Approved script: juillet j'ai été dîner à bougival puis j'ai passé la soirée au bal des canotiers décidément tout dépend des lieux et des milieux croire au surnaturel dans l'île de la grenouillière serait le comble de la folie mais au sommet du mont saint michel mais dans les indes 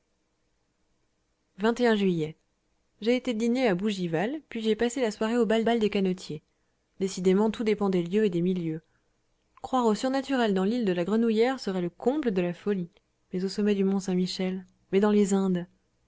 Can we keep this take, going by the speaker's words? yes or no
no